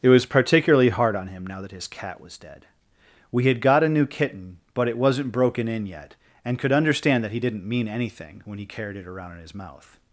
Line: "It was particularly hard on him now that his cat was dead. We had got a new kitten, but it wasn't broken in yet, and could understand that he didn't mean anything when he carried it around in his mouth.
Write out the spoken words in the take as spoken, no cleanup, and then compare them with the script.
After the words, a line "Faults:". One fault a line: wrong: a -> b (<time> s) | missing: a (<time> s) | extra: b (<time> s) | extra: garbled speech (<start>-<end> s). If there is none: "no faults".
"It was particularly hard on him now that his cat was dead. We had got a new kitten, but it wasn't broken in yet, and could understand that he didn't mean anything when he carried it around in his mouth.
Faults:
no faults